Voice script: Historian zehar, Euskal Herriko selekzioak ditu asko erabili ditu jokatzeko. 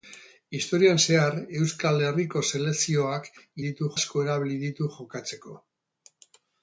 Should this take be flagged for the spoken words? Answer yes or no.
no